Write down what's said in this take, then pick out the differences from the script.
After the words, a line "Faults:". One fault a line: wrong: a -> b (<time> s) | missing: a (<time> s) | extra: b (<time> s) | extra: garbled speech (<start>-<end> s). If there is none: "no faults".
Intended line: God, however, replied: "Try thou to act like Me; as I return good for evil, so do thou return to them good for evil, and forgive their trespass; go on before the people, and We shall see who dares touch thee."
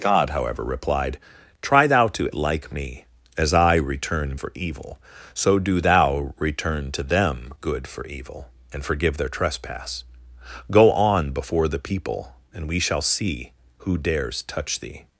God, however, replied: "Try thou to like Me; as I return for evil, so do thou return to them good for evil, and forgive their trespass; go on before the people, and We shall see who dares touch thee."
Faults:
missing: act (2.3 s)
missing: good (4.4 s)